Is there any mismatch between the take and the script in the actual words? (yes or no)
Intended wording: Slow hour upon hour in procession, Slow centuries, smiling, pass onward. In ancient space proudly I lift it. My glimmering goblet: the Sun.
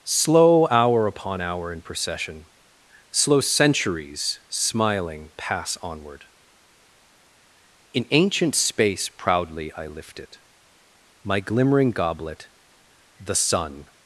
no